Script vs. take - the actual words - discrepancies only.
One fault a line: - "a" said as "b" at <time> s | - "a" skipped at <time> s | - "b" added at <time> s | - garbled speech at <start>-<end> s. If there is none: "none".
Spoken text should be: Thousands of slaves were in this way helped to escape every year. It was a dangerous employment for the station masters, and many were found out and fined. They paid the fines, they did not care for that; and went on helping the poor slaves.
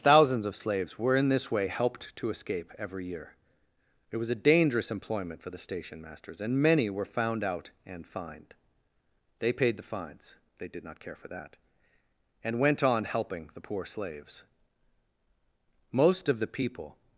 - "Most of the people" added at 15.9 s